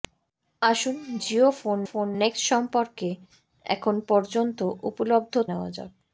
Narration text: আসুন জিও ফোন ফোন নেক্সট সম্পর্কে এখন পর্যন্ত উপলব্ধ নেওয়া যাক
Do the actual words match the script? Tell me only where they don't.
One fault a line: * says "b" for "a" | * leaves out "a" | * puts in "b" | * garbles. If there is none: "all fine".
all fine